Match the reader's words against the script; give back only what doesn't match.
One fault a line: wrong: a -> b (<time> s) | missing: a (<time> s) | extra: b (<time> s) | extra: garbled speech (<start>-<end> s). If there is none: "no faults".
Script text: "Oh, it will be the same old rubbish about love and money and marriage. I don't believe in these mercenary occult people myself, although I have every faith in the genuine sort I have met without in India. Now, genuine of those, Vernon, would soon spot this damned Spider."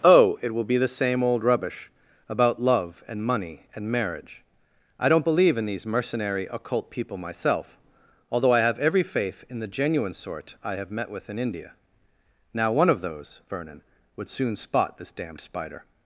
wrong: without -> with (11.1 s)
wrong: genuine -> one (12.7 s)